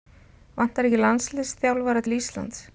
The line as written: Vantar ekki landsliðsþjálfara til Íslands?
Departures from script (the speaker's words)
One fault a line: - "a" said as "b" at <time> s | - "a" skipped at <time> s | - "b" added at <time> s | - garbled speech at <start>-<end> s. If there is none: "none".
none